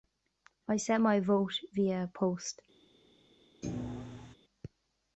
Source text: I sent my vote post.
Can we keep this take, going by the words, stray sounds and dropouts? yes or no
no